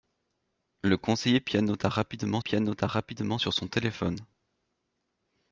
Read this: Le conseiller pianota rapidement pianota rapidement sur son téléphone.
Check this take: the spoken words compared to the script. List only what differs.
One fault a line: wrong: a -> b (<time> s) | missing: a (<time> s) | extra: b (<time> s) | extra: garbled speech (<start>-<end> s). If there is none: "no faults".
no faults